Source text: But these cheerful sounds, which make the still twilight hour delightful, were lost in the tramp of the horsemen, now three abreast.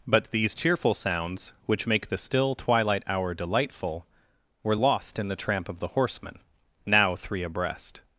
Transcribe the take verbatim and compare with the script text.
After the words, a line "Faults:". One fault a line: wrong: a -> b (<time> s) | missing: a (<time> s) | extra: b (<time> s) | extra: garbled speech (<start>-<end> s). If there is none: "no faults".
But these cheerful sounds, which make the still twilight hour delightful, were lost in the tramp of the horsemen, now three abreast.
Faults:
no faults